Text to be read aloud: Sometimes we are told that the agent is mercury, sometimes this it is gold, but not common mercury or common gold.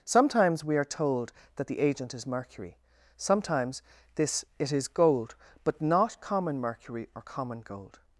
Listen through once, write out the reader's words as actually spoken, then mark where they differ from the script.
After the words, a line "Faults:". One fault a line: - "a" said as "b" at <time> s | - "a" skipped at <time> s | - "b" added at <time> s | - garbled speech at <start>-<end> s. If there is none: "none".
Sometimes we are told that the agent is mercury, sometimes this it is gold, but not common mercury or common gold.
Faults:
none